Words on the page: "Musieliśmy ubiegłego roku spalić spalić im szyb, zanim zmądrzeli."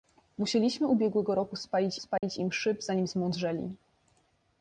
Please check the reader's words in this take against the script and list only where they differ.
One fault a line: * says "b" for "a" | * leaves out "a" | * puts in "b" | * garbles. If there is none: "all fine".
all fine